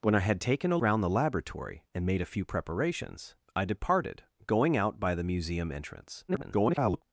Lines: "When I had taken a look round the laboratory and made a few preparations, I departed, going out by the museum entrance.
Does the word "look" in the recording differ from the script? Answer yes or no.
yes